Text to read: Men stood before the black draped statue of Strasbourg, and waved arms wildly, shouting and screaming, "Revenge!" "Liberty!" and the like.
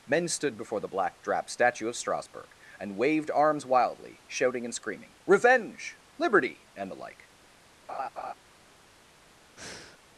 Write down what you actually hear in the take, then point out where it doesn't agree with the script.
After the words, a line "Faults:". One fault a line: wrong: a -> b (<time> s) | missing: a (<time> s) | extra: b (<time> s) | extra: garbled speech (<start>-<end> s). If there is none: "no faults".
Men stood before the black drap statue of Strasbourg, and waved arms wildly, shouting and screaming, "Revenge!" "Liberty!" and the like.
Faults:
wrong: draped -> drap (1.2 s)